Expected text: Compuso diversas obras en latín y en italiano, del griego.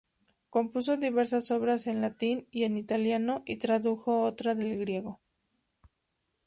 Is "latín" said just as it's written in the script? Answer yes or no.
yes